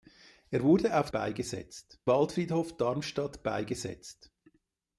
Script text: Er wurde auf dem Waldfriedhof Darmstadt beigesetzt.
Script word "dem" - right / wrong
wrong